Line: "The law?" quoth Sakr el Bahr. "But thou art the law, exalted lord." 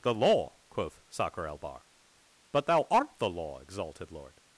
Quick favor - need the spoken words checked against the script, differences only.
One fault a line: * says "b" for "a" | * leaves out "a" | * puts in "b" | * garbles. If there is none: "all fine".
all fine